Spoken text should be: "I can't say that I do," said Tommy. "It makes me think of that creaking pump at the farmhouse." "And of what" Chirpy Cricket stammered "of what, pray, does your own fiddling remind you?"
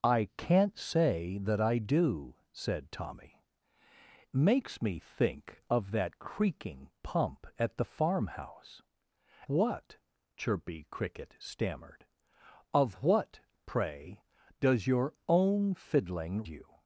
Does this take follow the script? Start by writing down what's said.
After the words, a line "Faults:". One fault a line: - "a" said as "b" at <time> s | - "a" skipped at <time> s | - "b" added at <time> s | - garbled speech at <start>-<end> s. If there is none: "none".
"I can't say that I do," said Tommy. "Makes me think of that creaking pump at the farmhouse." "What" Chirpy Cricket stammered "of what, pray, does your own fiddling you?"
Faults:
- "It" skipped at 3.4 s
- "And of" skipped at 8.8 s
- "remind" skipped at 16.4 s